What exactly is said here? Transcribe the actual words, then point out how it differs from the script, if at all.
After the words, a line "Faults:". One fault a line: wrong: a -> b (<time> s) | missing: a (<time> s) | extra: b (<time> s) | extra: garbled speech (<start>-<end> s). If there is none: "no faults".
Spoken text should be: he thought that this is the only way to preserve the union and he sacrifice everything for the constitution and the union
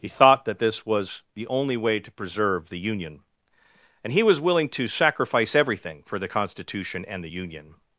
he thought that this was the only way to preserve the union and he was willing to sacrifice everything for the constitution and the union
Faults:
wrong: is -> was (0.8 s)
extra: was willing to (4.2 s)